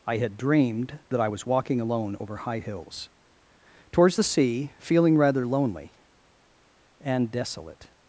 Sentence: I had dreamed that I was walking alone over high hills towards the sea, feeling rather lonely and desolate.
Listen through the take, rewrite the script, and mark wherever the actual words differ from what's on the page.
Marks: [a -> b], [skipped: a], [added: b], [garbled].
I had dreamed that I was walking alone over high hills towards the sea, feeling rather lonely and desolate.